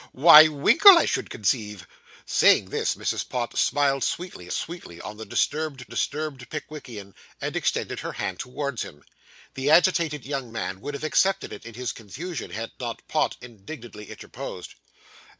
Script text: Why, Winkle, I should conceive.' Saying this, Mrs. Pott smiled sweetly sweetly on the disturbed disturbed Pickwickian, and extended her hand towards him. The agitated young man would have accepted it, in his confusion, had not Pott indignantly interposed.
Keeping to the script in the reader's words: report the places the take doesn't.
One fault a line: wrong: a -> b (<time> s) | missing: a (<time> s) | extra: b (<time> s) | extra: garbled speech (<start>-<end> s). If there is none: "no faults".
no faults